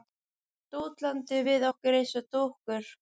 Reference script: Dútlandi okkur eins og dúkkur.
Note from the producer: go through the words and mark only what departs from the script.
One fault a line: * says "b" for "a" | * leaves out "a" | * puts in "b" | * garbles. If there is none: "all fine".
* puts in "við"